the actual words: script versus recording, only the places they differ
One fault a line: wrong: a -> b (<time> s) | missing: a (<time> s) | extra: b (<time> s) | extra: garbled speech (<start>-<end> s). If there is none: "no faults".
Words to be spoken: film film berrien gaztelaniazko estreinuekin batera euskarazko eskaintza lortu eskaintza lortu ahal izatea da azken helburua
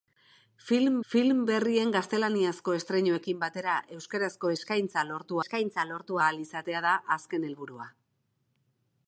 no faults